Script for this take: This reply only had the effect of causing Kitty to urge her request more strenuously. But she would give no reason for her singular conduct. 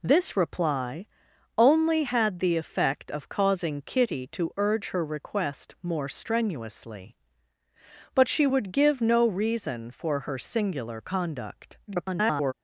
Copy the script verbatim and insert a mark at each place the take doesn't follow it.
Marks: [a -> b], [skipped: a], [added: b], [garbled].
This reply only had the effect of causing Kitty to urge her request more strenuously. But she would give no reason for her singular conduct. [garbled]